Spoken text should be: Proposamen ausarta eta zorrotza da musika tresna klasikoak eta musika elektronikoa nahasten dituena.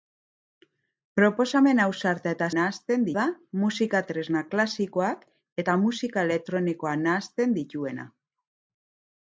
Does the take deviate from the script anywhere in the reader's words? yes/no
yes